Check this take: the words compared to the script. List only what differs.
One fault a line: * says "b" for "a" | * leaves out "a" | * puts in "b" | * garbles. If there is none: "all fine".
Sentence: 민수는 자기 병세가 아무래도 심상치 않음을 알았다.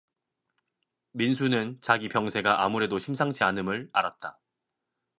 all fine